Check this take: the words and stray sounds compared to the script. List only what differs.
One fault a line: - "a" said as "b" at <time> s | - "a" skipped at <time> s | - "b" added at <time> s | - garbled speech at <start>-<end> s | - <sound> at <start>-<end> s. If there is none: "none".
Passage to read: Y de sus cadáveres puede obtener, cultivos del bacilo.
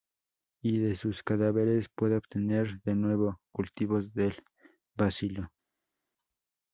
- "de nuevo" added at 2.8 s